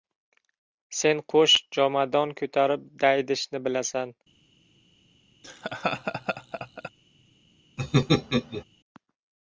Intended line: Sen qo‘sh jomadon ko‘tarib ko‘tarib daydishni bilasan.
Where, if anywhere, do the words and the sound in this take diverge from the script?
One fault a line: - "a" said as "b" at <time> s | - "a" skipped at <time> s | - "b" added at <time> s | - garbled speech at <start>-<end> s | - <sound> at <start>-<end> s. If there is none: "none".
- "ko‘tarib" skipped at 2.9 s
- laugh at 5.4-6.9 s
- laugh at 7.8-8.6 s